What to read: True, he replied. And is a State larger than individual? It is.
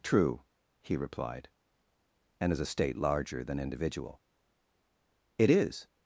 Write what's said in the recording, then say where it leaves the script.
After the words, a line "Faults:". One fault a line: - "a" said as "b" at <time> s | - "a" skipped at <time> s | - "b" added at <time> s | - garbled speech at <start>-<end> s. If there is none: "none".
True, he replied. And is a State larger than individual? It is.
Faults:
none